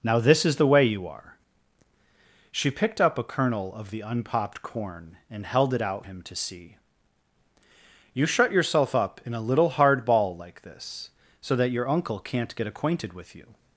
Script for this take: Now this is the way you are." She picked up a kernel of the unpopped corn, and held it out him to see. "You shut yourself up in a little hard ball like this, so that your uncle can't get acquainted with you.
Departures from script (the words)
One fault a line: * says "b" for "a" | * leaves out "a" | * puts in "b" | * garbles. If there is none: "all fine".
all fine